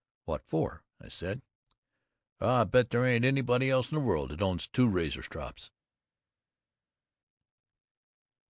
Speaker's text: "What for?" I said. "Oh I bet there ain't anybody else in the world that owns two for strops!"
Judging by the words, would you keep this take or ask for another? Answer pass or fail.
fail